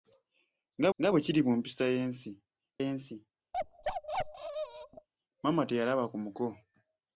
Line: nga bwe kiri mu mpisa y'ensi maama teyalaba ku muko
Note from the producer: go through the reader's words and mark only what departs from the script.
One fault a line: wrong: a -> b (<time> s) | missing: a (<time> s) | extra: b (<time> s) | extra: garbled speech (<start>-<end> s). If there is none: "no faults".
extra: nga (1.0 s)
extra: y'ensi (2.8 s)